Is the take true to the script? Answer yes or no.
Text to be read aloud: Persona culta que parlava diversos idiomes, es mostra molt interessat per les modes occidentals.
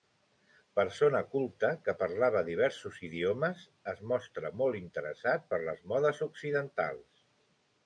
yes